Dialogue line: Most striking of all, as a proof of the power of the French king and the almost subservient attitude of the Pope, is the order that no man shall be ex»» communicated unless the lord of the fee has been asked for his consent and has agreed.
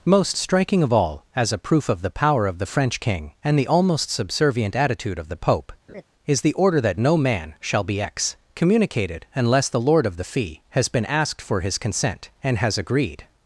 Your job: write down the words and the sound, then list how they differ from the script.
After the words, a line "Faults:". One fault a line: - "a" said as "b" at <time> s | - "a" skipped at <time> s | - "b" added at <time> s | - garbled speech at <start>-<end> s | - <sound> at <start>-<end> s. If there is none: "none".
Most striking of all, as a proof of the power of the French king and the almost subservient attitude of the Pope, is the order that no man shall be ex»» communicated unless the lord of the fee has been asked for his consent and has agreed.
Faults:
- laugh at 5.9-6.0 s